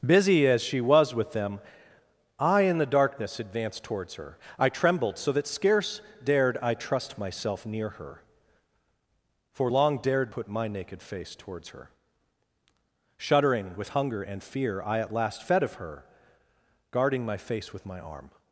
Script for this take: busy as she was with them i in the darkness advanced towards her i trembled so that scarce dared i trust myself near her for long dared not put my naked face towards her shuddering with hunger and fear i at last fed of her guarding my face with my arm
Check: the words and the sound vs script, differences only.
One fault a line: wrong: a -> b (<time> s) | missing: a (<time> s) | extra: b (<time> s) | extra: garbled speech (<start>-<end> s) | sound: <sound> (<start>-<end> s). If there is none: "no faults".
missing: not (10.3 s)